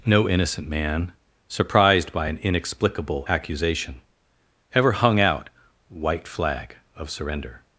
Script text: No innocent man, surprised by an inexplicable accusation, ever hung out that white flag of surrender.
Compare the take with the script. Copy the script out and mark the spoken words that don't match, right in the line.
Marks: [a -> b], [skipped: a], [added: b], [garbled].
No innocent man, surprised by an inexplicable accusation, ever hung out [skipped: that] white flag of surrender.